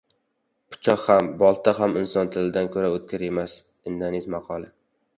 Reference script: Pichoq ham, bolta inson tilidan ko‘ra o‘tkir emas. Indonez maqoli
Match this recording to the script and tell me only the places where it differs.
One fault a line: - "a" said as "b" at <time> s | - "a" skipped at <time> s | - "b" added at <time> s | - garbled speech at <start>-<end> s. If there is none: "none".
- "ham" added at 1.8 s